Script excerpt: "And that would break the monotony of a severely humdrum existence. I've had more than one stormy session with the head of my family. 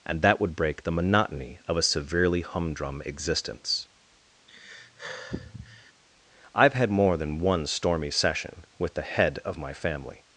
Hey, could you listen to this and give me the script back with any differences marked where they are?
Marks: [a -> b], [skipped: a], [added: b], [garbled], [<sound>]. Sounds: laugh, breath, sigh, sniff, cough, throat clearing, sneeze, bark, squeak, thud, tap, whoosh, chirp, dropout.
"And that would break the monotony of a severely humdrum existence. [sigh] I've had more than one stormy session with the head of my family.